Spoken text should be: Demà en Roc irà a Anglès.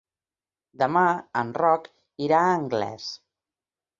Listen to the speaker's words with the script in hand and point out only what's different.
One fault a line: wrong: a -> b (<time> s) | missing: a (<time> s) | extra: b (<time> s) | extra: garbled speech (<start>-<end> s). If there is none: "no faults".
no faults